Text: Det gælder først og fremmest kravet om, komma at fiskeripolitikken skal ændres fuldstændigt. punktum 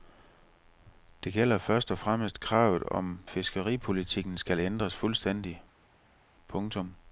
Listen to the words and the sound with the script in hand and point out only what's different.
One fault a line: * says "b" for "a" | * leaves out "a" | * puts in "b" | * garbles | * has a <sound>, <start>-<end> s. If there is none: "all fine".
* leaves out "komma at"